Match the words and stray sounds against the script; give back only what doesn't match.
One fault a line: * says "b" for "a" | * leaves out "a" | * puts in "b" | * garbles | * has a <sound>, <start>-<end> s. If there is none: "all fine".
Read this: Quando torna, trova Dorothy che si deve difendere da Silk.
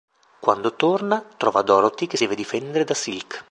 * leaves out "si"